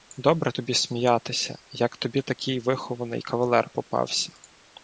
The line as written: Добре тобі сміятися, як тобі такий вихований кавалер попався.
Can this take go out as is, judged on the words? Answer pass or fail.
pass